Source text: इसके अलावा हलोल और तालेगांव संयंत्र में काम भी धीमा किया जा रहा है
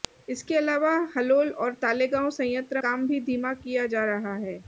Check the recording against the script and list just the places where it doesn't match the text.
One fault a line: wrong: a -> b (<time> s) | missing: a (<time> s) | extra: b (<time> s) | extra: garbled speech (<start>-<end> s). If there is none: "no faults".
missing: में (2.8 s)